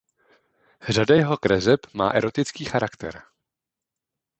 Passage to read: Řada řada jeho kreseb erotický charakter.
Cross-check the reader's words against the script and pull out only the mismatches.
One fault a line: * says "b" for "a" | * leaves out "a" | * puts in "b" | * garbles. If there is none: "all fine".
* leaves out "řada"
* puts in "má"